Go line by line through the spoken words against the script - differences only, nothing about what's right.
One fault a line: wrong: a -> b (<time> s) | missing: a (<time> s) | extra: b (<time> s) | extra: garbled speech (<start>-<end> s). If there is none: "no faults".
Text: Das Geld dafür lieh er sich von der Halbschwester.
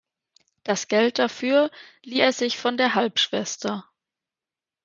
no faults